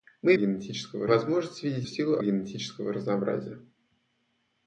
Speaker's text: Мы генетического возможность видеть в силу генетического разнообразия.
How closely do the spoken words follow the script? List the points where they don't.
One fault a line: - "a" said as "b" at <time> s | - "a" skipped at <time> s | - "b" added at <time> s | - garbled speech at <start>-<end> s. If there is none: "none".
none